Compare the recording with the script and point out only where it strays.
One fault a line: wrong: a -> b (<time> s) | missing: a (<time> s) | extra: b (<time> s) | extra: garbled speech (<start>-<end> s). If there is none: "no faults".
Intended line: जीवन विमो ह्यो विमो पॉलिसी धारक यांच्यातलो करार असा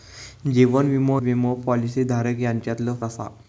missing: ह्यो (1.2 s)
missing: करार (2.9 s)